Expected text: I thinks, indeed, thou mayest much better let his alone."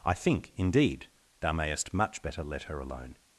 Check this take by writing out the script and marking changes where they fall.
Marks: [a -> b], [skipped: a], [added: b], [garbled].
I [thinks, -> think] indeed, thou mayest much better let [his -> her] alone."